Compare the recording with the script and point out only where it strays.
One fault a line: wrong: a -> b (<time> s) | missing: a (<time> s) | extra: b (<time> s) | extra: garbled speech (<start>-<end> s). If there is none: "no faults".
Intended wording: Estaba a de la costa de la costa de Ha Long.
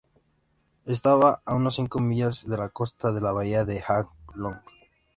extra: unas cinco millas (1.5 s)
wrong: costa -> bahía (3.3 s)